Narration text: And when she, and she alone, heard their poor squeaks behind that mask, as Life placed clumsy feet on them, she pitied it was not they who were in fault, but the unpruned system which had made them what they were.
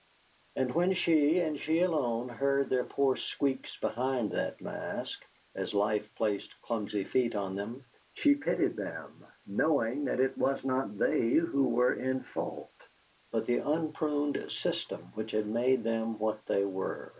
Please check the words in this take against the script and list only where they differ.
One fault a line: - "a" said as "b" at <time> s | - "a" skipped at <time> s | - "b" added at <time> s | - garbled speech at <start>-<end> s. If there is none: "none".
- "them knowing that" added at 8.8 s